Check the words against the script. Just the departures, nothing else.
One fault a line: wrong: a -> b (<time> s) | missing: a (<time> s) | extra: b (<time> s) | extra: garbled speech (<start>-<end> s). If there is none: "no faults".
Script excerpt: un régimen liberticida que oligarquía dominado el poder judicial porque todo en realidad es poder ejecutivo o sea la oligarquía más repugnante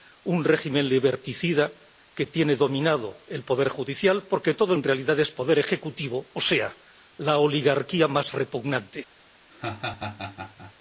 wrong: oligarquía -> tiene (2.2 s)